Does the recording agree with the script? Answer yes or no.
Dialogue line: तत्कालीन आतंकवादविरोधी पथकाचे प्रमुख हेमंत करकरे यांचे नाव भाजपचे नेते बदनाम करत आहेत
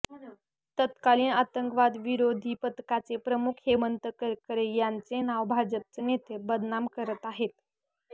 yes